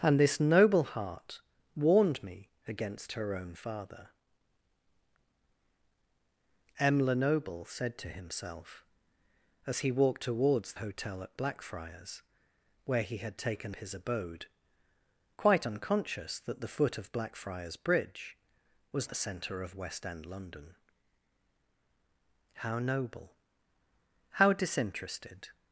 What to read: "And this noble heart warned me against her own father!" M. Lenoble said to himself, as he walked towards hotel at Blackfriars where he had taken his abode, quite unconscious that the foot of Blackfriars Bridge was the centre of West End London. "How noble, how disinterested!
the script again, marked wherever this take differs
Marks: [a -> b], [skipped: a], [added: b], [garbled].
"And this noble heart warned me against her own father!" M. Lenoble said to himself, as he walked towards hotel at Blackfriars where he had taken his abode, quite unconscious that the foot of Blackfriars Bridge was the centre of West End London. "How noble, how disinterested!